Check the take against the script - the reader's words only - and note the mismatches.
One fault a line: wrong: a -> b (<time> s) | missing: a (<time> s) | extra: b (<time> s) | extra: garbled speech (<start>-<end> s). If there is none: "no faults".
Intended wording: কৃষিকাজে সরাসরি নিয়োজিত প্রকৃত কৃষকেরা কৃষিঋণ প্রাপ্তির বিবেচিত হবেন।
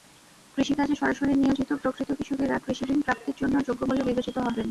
extra: জন্য যোগ্য বলে (3.4 s)